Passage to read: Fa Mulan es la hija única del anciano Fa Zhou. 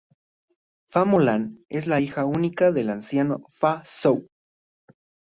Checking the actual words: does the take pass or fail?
pass